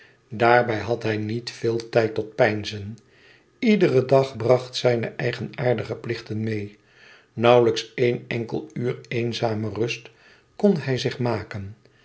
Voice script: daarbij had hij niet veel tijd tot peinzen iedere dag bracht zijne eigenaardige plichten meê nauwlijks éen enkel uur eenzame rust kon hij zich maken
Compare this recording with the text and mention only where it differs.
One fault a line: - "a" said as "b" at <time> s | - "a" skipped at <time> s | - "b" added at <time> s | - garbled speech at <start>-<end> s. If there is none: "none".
none